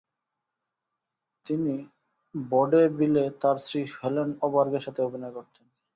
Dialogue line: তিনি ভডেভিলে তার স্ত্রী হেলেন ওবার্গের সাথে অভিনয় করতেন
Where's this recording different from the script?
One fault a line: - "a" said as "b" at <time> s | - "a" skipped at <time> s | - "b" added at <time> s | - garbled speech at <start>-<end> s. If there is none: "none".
none